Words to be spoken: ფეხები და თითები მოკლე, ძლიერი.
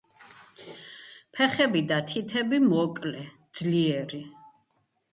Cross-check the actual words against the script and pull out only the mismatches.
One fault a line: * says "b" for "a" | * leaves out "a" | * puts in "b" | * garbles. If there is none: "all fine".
all fine